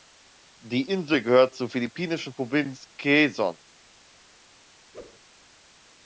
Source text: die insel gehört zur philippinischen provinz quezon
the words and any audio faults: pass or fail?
fail